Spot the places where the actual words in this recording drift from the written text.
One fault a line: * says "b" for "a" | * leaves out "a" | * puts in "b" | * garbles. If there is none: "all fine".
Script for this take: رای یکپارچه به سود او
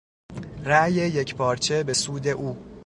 all fine